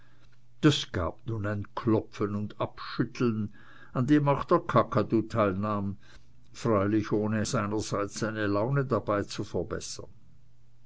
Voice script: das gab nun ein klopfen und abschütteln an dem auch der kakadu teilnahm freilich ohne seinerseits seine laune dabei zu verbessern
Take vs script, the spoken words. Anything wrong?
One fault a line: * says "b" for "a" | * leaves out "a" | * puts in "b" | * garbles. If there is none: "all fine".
all fine